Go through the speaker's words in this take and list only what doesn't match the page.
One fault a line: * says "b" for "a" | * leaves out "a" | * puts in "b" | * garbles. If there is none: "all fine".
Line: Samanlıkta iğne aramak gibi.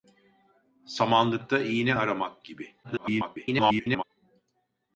* garbles